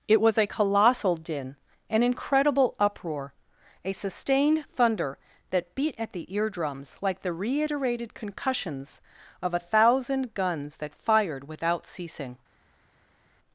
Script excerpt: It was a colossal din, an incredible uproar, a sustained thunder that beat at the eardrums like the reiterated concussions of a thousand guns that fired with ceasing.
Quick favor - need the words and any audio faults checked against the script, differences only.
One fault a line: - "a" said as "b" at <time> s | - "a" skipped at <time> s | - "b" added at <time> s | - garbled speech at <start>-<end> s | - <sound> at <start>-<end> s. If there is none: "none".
- "with" said as "without" at 11.5 s